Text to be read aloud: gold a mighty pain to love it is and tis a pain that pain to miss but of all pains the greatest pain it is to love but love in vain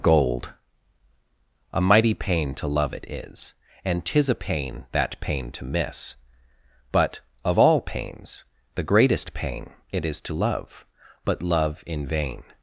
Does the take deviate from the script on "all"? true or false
false